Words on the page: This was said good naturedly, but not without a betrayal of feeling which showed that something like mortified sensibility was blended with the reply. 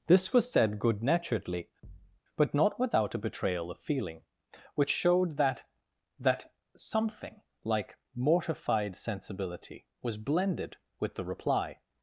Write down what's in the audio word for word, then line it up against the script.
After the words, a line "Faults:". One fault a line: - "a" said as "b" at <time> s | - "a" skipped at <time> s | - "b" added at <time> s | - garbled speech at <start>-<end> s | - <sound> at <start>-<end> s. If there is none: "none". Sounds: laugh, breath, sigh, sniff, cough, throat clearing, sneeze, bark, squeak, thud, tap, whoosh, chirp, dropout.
This was said good naturedly, but not without a betrayal of feeling which showed that that something like mortified sensibility was blended with the reply.
Faults:
- thud at 1.8-2.2 s
- "that" added at 6.2 s